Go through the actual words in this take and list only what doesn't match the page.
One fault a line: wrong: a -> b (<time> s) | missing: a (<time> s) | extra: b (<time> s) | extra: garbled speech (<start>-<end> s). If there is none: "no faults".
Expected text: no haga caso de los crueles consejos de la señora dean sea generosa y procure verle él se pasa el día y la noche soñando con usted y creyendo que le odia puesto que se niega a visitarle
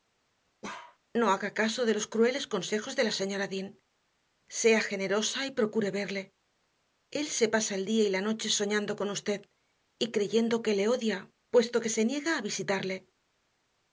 no faults